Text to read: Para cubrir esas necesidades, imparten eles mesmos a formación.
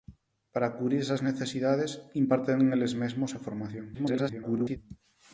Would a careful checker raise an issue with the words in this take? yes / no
yes